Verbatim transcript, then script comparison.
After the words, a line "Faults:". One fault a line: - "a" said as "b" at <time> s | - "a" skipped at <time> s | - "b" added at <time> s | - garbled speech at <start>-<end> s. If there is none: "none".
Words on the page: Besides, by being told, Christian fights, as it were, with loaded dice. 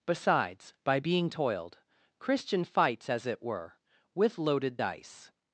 Besides, by being toiled, Christian fights, as it were, with loaded dice.
Faults:
- "told" said as "toiled" at 1.3 s